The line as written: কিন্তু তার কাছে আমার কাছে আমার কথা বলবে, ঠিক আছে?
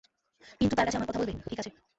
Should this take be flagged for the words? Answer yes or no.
yes